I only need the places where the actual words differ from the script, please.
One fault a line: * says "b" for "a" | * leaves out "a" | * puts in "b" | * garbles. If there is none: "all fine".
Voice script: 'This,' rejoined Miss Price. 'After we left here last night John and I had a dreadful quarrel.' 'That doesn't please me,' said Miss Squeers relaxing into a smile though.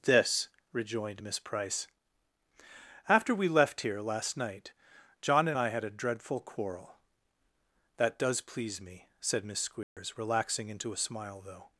* says "does" for "doesn't"